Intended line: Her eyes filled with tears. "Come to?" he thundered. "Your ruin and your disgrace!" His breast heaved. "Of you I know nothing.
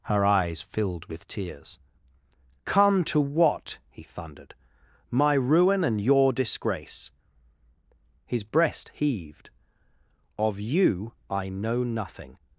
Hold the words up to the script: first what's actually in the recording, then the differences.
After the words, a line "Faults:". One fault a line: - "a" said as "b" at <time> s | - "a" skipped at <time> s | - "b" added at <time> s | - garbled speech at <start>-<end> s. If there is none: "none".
Her eyes filled with tears. "Come to what?" he thundered. "My ruin and your disgrace!" His breast heaved. "Of you I know nothing.
Faults:
- "what" added at 3.2 s
- "Your" said as "My" at 5.1 s